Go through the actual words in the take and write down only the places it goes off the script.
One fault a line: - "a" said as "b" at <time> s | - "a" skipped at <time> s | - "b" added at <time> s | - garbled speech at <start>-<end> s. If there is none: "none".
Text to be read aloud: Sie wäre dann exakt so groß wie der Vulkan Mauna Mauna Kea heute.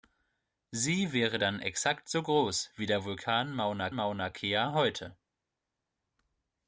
none